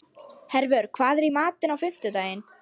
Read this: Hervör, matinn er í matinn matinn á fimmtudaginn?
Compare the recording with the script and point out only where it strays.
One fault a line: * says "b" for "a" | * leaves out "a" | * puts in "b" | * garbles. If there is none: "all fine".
* says "hvað" for "matinn"
* leaves out "matinn"